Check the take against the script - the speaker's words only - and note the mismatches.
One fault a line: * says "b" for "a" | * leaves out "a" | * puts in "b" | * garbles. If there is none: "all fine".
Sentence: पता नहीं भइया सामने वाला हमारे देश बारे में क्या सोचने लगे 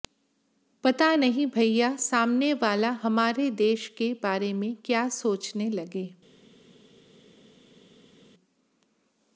* puts in "के"